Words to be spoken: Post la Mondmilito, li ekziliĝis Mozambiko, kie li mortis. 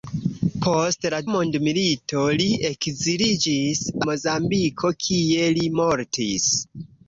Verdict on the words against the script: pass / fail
pass